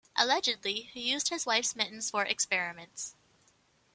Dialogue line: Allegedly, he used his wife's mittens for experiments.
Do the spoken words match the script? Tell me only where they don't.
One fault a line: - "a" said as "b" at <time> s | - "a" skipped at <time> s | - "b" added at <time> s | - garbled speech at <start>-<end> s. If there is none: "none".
none